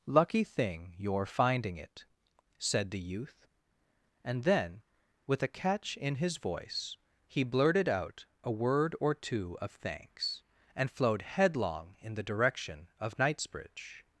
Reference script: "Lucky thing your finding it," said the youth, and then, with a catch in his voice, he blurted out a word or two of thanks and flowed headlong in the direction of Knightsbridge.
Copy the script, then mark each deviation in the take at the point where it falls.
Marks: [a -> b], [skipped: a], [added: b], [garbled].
"Lucky thing your finding it," said the youth, and then, with a catch in his voice, he blurted out a word or two of thanks and flowed headlong in the direction of Knightsbridge.